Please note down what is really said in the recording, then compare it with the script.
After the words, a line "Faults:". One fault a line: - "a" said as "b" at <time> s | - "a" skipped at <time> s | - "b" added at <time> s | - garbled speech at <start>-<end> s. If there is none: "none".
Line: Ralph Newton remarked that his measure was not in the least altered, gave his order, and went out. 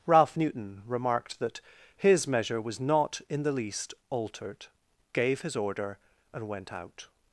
Ralph Newton remarked that his measure was not in the least altered, gave his order, and went out.
Faults:
none